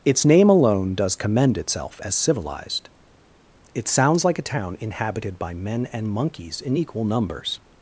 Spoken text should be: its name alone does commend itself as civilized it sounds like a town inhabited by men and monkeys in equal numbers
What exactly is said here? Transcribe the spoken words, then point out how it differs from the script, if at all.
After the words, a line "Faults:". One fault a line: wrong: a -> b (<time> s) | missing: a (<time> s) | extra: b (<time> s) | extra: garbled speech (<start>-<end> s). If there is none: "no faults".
its name alone does commend itself as civilized it sounds like a town inhabited by men and monkeys in equal numbers
Faults:
no faults